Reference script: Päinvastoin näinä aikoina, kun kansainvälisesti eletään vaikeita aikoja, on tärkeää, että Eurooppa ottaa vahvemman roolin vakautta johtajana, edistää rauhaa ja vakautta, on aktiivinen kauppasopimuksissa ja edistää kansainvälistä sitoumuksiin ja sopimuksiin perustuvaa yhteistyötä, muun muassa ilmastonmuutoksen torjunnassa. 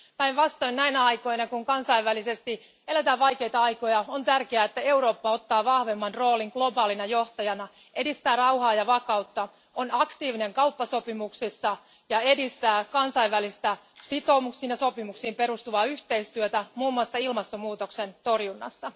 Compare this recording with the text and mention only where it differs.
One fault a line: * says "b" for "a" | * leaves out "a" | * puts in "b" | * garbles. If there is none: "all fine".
* says "globaalina" for "vakautta"